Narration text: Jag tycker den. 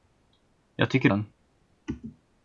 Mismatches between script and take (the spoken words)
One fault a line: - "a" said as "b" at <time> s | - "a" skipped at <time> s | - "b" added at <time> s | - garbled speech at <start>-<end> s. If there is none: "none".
none